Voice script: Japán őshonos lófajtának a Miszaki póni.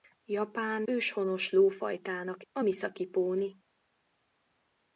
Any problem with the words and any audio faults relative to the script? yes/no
no